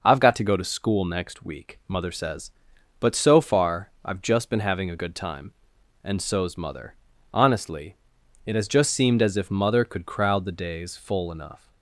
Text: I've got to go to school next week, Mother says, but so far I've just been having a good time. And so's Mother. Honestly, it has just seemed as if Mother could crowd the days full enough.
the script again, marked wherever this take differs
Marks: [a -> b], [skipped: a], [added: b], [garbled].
I've got to go to school next week, Mother says, but so far I've just been having a good time. And so's Mother. Honestly, it has just seemed as if Mother could crowd the days full enough.